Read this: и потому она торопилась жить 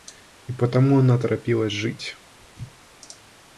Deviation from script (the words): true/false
false